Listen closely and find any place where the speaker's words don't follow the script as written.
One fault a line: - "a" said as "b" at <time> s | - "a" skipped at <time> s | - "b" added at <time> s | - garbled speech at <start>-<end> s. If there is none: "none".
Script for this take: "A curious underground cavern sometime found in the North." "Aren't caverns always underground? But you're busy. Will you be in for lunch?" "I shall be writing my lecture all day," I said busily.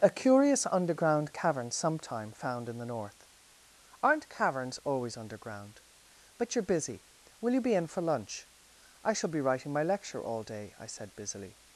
none